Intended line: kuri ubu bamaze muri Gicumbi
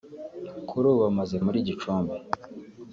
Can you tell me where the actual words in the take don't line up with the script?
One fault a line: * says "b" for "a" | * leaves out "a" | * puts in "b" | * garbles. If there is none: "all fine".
all fine